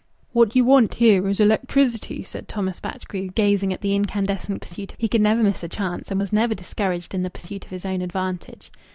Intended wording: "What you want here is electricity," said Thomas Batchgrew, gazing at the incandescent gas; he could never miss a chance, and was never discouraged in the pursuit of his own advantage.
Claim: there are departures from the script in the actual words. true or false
true